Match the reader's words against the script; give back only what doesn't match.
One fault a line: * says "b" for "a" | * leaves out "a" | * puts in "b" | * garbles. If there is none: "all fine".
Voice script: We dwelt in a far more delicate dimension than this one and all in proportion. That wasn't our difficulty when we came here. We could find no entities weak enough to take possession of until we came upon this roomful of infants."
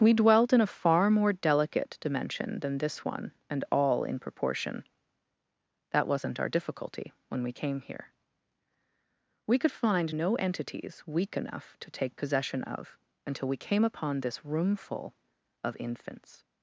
all fine